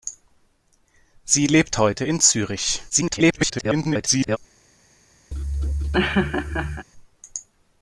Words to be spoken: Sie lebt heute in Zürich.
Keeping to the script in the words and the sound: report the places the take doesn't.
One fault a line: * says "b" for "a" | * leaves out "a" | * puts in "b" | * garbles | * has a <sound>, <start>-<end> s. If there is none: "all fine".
* garbles
* has a laugh, 5.3-6.9 s